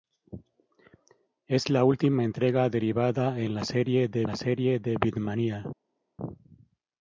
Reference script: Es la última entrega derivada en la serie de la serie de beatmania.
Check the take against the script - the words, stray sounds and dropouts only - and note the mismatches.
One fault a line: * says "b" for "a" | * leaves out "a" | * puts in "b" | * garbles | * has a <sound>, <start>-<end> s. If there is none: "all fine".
all fine